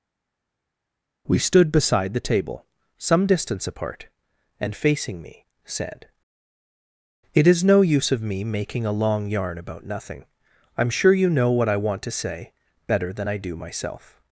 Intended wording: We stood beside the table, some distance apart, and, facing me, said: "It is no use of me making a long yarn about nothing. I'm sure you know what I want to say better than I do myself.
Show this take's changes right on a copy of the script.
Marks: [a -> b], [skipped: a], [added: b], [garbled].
We stood beside the table, some distance apart, and, facing me, said: "It is no use of me making a long yarn about nothing. I'm sure you know what I want to say better than I do myself.